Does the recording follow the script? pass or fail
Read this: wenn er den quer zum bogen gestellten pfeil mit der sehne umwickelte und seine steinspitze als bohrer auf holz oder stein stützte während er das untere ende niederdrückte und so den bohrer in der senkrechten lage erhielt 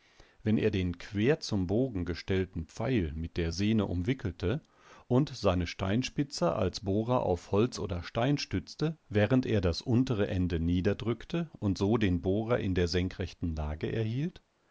pass